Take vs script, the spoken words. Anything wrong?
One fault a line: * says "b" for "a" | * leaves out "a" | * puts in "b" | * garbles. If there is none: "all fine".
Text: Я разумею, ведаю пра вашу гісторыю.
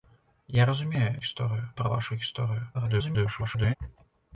* says "гісторыю" for "ведаю"
* garbles